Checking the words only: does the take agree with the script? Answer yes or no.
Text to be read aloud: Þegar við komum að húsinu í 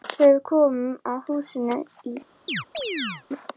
yes